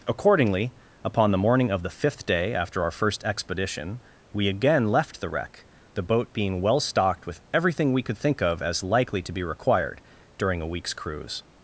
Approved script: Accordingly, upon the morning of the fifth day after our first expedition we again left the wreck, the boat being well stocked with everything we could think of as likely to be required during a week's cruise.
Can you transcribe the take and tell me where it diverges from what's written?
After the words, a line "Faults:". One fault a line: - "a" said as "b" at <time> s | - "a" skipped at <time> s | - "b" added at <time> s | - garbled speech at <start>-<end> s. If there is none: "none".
Accordingly, upon the morning of the fifth day after our first expedition we again left the wreck, the boat being well stocked with everything we could think of as likely to be required during a week's cruise.
Faults:
none